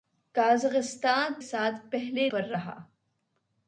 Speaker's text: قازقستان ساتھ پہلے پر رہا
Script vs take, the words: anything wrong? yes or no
no